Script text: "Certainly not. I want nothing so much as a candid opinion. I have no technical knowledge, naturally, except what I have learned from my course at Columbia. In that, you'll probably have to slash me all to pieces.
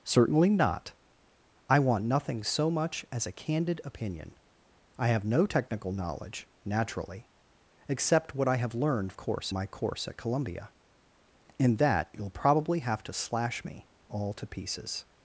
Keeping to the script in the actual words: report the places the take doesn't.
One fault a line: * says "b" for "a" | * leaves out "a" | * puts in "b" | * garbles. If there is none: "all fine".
* says "course" for "from"